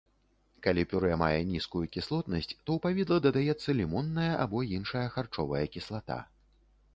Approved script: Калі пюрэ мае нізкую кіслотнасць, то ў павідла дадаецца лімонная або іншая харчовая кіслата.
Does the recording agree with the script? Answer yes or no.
yes